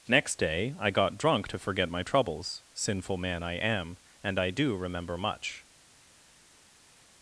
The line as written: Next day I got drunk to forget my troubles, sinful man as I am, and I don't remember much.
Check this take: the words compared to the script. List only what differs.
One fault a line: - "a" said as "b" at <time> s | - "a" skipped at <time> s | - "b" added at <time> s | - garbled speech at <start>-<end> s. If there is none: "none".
- "as" skipped at 3.4 s
- "don't" said as "do" at 4.5 s